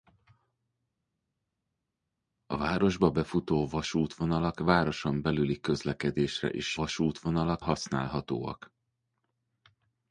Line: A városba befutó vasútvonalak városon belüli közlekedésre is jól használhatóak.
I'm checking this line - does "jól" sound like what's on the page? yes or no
no